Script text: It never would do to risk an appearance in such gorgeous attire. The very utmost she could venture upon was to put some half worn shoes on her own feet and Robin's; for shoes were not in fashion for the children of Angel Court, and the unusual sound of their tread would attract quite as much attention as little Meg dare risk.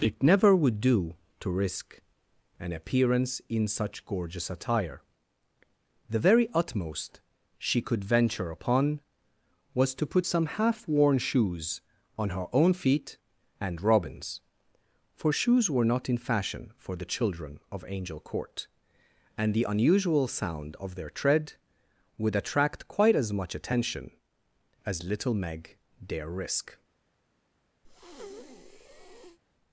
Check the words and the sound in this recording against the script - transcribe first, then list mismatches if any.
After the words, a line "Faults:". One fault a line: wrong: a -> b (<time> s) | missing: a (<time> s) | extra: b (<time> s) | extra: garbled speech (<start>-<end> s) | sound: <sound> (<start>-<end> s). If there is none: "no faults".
It never would do to risk an appearance in such gorgeous attire. The very utmost she could venture upon was to put some half worn shoes on her own feet and Robin's; for shoes were not in fashion for the children of Angel Court, and the unusual sound of their tread would attract quite as much attention as little Meg dare risk.
Faults:
sound: breath (27.8-29.4 s)